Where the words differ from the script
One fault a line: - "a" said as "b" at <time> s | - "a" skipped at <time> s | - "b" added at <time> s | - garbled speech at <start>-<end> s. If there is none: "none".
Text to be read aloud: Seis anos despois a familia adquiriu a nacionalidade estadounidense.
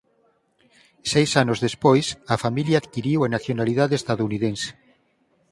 none